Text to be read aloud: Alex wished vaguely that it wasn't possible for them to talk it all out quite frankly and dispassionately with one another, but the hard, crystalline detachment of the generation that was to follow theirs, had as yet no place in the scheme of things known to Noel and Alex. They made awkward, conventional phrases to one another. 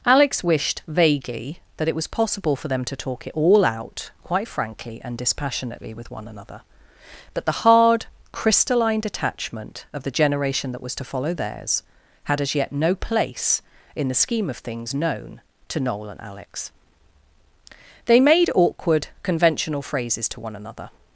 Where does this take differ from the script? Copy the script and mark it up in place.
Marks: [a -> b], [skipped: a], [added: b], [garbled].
Alex wished vaguely that it [wasn't -> was] possible for them to talk it all out quite frankly and dispassionately with one another, but the hard, crystalline detachment of the generation that was to follow theirs, had as yet no place in the scheme of things known to Noel and Alex. They made awkward, conventional phrases to one another.